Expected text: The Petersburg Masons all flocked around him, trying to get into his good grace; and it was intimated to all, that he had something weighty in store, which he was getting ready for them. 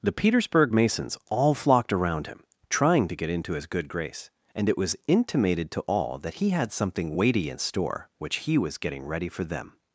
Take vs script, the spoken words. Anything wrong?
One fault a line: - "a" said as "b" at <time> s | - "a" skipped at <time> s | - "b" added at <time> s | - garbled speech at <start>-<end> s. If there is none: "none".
none